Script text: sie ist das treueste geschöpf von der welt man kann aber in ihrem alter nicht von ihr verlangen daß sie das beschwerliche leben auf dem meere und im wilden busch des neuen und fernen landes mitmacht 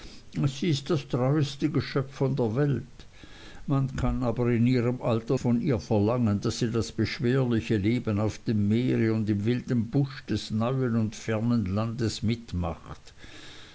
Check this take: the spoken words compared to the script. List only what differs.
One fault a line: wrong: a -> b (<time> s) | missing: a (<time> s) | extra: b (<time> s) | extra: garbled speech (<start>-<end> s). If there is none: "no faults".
missing: nicht (5.4 s)